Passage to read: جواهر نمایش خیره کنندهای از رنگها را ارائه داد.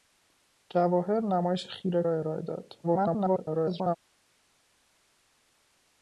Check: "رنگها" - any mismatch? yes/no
yes